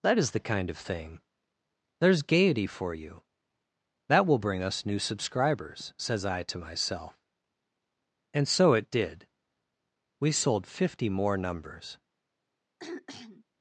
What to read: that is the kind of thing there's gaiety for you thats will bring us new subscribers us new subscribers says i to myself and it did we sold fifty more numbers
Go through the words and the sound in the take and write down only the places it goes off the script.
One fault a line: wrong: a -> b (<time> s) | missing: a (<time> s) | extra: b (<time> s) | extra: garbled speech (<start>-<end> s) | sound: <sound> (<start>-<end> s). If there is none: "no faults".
wrong: thats -> that (4.1 s)
missing: us new subscribers (5.9 s)
extra: so (8.5 s)
sound: throat clearing (12.8-13.4 s)